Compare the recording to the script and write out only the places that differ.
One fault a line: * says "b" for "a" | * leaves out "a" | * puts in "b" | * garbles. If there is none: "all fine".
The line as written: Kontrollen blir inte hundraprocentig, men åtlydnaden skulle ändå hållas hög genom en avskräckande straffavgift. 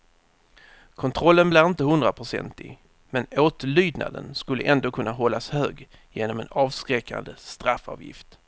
* puts in "kunna"